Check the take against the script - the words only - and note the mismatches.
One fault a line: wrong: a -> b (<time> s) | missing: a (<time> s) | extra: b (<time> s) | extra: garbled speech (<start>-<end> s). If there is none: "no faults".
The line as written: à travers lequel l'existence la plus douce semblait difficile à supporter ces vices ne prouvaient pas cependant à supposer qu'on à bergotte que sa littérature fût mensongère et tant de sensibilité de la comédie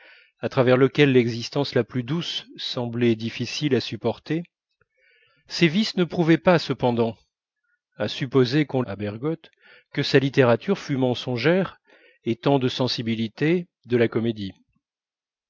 no faults